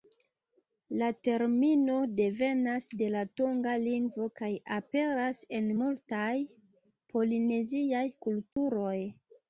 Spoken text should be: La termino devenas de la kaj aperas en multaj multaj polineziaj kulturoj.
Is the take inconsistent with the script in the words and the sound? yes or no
yes